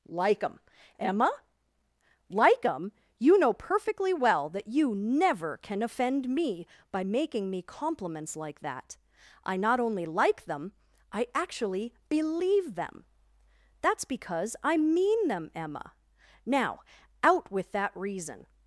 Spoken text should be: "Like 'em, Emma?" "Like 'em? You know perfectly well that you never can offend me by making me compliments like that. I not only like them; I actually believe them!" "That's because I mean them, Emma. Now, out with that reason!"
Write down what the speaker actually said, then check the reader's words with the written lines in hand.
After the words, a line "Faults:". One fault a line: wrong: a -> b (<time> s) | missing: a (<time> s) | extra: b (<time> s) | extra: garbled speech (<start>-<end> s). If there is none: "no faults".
"Like 'em, Emma?" "Like 'em? You know perfectly well that you never can offend me by making me compliments like that. I not only like them; I actually believe them!" "That's because I mean them, Emma. Now, out with that reason!"
Faults:
no faults